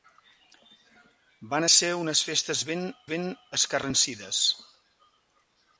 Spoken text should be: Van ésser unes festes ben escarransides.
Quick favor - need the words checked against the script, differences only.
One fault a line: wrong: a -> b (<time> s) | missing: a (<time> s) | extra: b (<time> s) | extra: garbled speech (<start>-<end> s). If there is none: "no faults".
extra: ben (3.1 s)